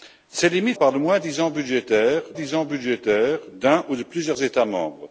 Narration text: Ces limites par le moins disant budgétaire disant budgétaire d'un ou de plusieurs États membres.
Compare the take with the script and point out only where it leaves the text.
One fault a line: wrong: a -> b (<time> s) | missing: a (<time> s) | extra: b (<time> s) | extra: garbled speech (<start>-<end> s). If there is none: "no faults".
no faults